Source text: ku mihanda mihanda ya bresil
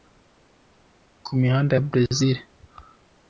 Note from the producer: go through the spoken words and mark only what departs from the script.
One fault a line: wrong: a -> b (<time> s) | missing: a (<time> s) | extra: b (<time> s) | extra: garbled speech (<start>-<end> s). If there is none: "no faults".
missing: mihanda (1.7 s)